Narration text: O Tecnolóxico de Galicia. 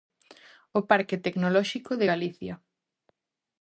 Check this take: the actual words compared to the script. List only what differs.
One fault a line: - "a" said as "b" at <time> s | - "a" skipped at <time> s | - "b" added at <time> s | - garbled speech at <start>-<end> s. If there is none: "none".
- "Parque" added at 0.9 s